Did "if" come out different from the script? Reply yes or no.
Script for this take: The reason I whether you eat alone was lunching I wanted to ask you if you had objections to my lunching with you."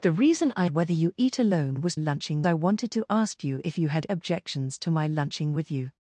no